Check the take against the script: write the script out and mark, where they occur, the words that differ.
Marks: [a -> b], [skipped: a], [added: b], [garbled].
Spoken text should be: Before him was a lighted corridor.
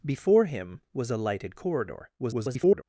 Before him was a lighted corridor. [garbled]